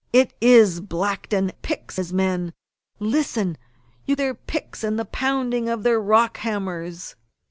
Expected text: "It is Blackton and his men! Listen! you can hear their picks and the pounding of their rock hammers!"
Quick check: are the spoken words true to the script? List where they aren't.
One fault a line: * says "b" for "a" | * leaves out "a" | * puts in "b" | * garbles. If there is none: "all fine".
* says "picks" for "and"
* leaves out "can hear"